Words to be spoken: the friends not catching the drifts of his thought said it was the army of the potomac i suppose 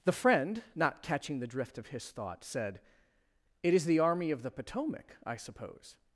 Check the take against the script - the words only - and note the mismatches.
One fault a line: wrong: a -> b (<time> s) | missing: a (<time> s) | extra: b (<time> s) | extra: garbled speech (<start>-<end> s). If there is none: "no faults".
wrong: friends -> friend (0.1 s)
wrong: drifts -> drift (1.5 s)
wrong: was -> is (3.7 s)